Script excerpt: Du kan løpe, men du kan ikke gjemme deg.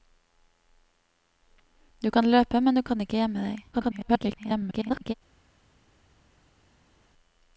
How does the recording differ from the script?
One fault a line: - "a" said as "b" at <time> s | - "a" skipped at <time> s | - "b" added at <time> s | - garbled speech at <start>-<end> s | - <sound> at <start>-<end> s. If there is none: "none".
- garbled speech at 3.7-5.1 s